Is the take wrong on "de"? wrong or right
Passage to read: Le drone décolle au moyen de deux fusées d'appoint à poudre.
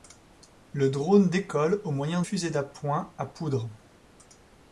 wrong